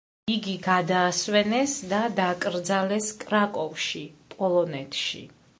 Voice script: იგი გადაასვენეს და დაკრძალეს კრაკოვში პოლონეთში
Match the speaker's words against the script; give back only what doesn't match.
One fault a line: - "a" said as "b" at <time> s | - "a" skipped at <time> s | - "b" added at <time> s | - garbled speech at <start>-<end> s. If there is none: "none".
none